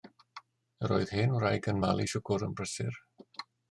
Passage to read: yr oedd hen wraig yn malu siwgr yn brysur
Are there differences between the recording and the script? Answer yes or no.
no